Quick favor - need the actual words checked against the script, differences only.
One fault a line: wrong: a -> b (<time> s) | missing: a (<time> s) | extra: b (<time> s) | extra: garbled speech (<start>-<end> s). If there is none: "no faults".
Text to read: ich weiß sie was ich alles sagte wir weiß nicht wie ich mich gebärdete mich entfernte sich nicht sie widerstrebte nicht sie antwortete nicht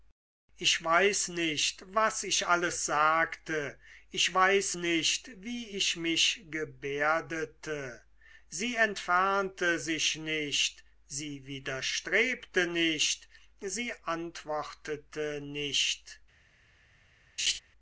wrong: sie -> nicht (1.3 s)
wrong: wir -> ich (4.1 s)
wrong: mich -> sie (8.5 s)